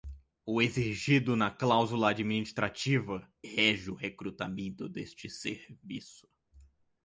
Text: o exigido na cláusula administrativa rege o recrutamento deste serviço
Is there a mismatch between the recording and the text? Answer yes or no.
no